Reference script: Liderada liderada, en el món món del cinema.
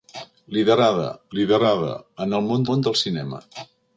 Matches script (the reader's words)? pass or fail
pass